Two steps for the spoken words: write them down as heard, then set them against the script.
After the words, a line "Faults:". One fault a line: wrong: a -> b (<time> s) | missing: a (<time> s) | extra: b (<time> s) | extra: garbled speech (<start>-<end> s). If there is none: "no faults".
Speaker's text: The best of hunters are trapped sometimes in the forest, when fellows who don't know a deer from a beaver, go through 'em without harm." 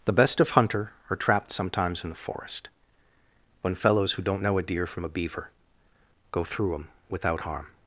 The best of hunter are trapped sometimes in the forest, when fellows who don't know a deer from a beaver, go through 'em without harm."
Faults:
wrong: hunters -> hunter (0.5 s)